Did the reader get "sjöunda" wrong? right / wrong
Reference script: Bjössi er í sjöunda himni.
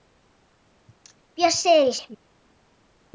wrong